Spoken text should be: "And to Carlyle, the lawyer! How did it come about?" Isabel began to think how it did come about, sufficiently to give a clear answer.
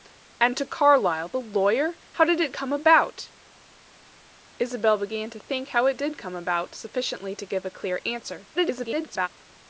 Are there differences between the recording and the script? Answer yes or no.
yes